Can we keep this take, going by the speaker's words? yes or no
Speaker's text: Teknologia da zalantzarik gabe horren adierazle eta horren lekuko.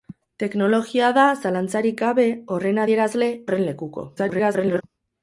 no